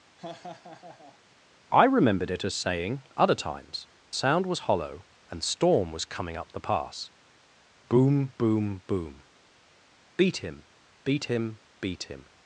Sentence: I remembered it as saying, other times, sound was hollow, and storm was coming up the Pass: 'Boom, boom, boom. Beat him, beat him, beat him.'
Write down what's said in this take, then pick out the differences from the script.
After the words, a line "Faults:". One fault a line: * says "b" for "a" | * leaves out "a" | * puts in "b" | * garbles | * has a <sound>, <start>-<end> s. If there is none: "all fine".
I remembered it as saying, other times, sound was hollow, and storm was coming up the Pass: 'Boom, boom, boom. Beat him, beat him, beat him.'
Faults:
* has a laugh, 0.2-1.2 s